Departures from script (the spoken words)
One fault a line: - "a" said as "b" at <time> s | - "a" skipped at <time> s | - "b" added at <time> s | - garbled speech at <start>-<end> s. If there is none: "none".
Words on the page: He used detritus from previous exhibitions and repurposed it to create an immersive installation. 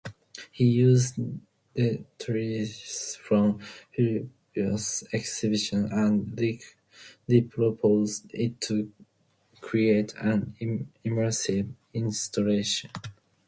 none